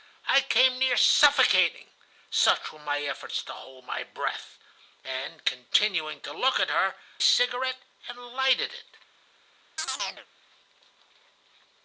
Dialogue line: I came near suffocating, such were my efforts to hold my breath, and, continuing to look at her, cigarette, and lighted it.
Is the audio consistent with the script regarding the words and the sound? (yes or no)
no